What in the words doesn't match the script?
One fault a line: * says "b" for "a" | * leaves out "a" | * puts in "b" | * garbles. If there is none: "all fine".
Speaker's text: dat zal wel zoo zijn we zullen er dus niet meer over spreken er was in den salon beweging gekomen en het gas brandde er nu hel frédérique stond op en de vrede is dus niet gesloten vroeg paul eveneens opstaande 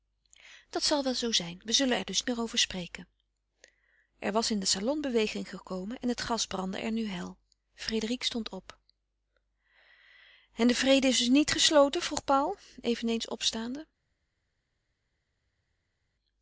* leaves out "niet"